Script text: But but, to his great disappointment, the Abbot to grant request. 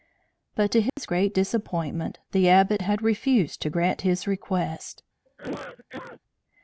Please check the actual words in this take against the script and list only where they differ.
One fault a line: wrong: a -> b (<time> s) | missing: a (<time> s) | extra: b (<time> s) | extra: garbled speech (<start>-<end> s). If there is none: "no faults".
missing: but (0.7 s)
extra: had refused (2.8 s)
extra: his (4.0 s)